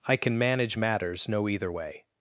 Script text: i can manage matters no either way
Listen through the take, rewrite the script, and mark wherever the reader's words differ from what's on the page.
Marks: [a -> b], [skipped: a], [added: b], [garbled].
i can manage matters no either way